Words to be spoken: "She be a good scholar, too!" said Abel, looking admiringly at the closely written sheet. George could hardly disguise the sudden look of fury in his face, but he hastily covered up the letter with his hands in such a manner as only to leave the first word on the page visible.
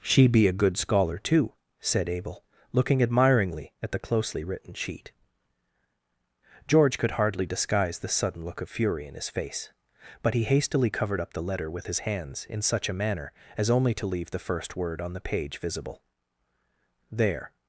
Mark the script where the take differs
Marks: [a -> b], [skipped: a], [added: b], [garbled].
"She be a good scholar, too!" said Abel, looking admiringly at the closely written sheet. George could hardly disguise the sudden look of fury in his face, but he hastily covered up the letter with his hands in such a manner as only to leave the first word on the page visible. [added: There]